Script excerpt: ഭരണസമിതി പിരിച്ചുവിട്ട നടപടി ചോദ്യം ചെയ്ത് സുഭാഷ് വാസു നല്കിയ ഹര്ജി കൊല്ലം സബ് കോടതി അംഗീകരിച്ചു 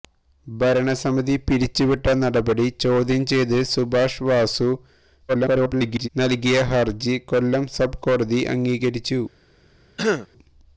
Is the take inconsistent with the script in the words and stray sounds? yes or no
yes